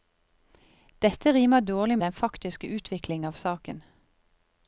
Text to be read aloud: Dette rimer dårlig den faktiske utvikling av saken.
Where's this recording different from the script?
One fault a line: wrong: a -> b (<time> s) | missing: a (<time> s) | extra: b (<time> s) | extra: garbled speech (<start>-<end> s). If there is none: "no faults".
no faults